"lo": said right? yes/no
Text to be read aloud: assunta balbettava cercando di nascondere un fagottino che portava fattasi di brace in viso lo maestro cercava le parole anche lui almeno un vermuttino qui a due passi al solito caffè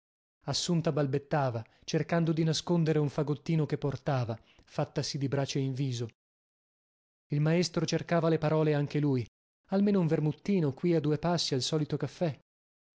no